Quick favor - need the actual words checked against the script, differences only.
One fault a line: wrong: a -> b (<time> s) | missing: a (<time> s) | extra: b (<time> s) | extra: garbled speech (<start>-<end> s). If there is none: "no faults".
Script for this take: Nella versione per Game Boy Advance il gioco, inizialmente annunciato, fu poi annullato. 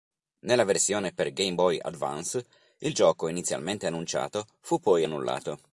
no faults